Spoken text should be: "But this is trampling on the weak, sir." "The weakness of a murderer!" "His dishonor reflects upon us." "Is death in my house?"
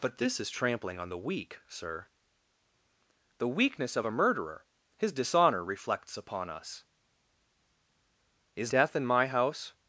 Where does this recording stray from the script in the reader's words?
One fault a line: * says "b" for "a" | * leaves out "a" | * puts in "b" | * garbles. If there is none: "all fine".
all fine